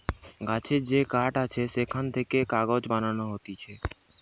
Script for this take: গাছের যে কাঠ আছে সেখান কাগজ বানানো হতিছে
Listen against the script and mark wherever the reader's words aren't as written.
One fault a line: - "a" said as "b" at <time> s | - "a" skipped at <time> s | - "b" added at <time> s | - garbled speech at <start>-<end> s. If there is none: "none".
- "থেকে" added at 2.1 s